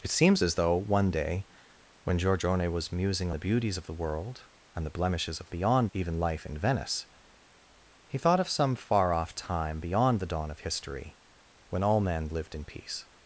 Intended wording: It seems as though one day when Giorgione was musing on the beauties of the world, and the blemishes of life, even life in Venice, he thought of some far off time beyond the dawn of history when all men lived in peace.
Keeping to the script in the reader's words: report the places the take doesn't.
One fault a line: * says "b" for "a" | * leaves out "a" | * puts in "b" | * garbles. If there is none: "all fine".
* leaves out "on"
* says "beyond" for "life"